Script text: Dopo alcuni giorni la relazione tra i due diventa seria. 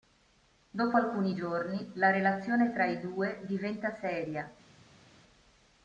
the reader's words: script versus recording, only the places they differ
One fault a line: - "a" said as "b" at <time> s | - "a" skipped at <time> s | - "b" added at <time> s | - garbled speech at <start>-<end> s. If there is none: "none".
none